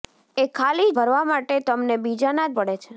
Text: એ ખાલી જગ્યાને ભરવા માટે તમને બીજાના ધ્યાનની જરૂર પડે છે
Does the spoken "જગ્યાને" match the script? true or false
false